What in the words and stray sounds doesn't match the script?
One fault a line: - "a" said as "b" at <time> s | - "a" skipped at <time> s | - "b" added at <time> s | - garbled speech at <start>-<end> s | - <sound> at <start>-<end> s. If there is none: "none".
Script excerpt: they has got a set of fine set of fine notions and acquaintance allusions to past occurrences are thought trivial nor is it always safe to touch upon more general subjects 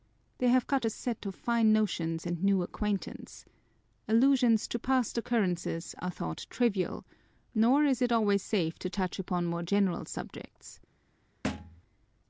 - "has" said as "have" at 0.5 s
- "set of fine" skipped at 1.7 s
- "new" added at 2.4 s
- thud at 11.4-11.8 s